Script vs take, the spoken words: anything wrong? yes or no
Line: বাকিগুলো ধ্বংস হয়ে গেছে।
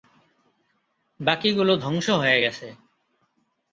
no